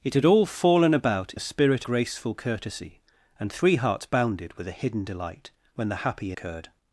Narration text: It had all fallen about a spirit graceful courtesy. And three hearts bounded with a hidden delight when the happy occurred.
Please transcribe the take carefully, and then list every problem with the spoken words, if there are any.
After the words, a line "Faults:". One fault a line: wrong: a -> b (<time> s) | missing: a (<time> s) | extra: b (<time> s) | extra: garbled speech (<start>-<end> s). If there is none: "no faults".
It had all fallen about a spirit graceful courtesy. And three hearts bounded with a hidden delight when the happy occurred.
Faults:
no faults